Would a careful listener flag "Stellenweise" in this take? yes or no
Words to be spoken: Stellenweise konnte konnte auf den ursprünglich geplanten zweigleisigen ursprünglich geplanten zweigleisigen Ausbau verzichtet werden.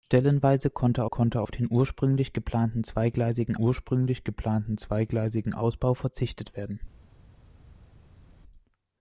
no